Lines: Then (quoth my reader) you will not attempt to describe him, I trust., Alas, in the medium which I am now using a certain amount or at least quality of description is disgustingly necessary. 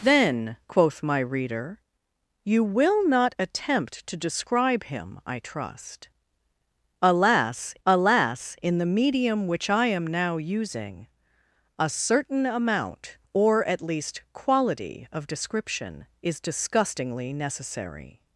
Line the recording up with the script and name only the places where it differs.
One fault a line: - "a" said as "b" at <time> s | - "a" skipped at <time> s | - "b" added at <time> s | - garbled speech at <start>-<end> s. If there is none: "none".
- "Alas" added at 7.9 s